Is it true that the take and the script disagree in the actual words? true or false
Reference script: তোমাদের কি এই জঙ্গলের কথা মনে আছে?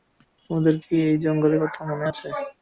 false